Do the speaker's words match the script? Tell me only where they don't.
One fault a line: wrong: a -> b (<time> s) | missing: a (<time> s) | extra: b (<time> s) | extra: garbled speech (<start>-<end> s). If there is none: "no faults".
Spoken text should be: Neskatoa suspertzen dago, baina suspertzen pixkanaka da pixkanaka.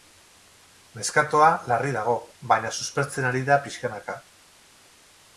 wrong: suspertzen -> larri (1.7 s)
wrong: pixkanaka -> ari (3.3 s)